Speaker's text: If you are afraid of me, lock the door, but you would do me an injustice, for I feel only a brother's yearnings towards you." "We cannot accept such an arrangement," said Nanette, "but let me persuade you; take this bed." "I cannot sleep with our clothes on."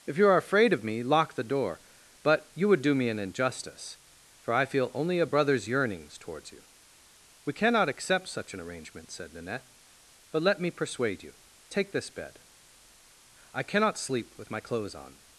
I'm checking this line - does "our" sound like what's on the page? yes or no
no